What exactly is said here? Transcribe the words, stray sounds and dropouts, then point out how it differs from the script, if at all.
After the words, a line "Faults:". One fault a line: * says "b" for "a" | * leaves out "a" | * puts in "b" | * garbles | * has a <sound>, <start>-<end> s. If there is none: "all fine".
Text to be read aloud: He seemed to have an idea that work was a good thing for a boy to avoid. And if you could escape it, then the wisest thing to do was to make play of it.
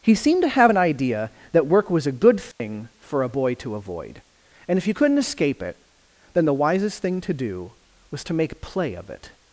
He seemed to have an idea that work was a good thing for a boy to avoid. And if you couldn't escape it, then the wisest thing to do was to make play of it.
Faults:
* has a dropout, 2.5-2.6 s
* says "couldn't" for "could"